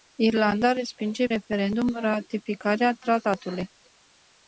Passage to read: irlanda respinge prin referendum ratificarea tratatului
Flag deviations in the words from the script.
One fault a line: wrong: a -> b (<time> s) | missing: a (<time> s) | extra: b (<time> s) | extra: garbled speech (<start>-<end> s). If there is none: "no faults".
missing: prin (1.3 s)